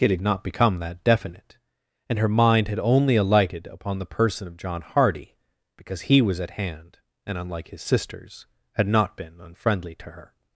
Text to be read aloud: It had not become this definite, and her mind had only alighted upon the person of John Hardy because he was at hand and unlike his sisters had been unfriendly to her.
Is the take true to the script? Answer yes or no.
no